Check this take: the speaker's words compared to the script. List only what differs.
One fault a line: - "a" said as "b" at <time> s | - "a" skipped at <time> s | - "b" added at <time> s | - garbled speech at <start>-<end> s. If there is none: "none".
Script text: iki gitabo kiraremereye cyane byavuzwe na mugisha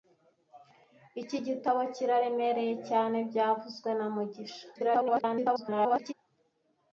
- garbled speech at 4.7-6.1 s